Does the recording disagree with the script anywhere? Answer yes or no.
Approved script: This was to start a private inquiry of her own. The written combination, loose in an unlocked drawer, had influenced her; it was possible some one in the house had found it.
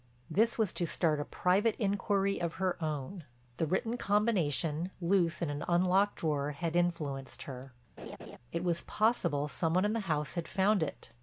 no